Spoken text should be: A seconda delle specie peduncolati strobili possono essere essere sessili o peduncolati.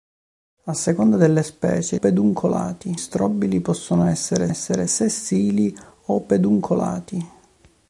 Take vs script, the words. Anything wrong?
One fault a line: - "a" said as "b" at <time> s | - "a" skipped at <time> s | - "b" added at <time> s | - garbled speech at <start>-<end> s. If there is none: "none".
none